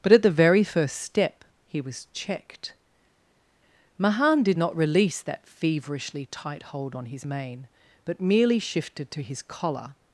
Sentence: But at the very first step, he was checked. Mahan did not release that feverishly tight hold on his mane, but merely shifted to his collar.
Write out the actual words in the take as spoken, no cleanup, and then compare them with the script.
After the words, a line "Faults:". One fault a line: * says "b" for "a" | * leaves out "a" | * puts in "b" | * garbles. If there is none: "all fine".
But at the very first step, he was checked. Mahan did not release that feverishly tight hold on his mane, but merely shifted to his collar.
Faults:
all fine